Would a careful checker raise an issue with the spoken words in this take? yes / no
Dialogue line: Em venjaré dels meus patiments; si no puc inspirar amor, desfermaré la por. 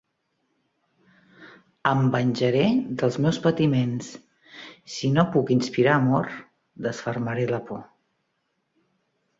no